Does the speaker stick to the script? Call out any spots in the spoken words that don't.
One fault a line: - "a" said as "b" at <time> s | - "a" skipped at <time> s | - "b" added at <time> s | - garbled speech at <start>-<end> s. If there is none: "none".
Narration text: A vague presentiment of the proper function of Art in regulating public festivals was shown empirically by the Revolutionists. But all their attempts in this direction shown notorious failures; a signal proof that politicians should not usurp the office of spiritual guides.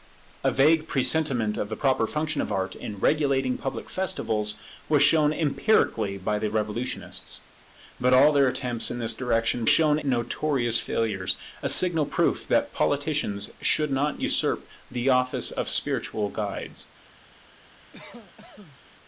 none